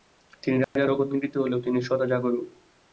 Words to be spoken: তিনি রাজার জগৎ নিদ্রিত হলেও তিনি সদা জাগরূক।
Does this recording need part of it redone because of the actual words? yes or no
no